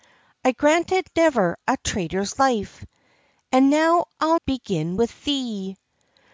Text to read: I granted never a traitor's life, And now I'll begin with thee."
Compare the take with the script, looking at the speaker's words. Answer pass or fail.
pass